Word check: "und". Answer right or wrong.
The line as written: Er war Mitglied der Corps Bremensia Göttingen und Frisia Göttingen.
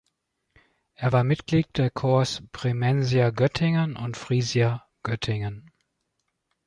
right